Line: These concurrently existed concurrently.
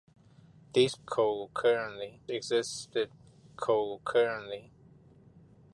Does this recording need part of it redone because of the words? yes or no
no